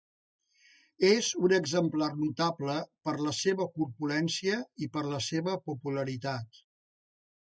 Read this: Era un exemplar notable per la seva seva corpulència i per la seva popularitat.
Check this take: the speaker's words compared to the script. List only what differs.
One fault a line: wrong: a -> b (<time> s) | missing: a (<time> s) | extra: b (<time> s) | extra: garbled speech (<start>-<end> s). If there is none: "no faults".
wrong: Era -> És (1.1 s)
missing: seva (3.7 s)